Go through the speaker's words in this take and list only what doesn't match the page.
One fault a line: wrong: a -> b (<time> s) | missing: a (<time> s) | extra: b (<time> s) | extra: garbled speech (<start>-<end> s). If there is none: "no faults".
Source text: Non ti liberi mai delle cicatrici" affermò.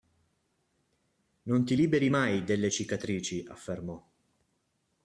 no faults